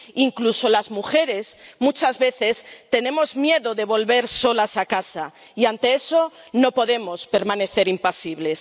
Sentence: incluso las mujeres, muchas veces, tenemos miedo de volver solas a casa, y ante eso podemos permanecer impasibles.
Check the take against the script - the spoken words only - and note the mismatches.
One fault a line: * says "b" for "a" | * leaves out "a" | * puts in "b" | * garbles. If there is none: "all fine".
* puts in "no"